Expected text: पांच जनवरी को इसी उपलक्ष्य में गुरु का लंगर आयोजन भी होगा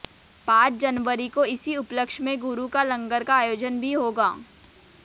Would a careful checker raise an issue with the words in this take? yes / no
yes